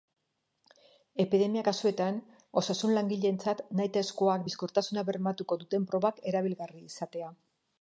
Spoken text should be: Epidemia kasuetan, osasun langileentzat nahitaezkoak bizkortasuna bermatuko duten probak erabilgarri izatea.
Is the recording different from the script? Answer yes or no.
no